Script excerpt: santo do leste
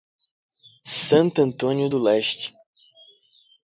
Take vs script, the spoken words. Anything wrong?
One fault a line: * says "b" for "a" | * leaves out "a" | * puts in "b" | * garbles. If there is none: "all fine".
* puts in "antônio"